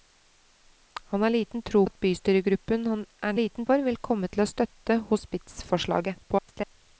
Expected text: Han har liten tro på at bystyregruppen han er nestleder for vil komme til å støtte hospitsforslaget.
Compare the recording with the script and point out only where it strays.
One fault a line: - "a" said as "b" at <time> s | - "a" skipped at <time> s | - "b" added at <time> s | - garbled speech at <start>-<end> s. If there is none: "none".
- "på" skipped at 1.8 s
- "nestleder" said as "liten" at 3.3 s
- garbled speech at 6.2-6.8 s